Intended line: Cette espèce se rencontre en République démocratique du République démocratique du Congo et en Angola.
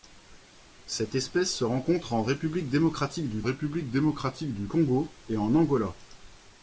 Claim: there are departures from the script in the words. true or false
false